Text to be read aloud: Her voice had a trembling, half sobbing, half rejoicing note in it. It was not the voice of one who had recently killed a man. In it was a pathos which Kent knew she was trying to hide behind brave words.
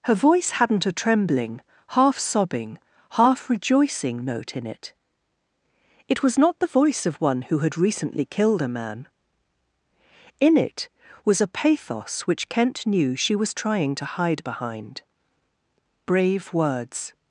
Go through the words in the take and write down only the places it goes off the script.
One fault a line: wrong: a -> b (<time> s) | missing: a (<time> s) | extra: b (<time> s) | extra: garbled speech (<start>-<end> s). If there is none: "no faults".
wrong: had -> hadn't (0.5 s)